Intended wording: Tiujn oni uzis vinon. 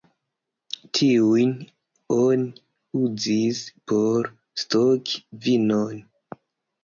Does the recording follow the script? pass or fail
fail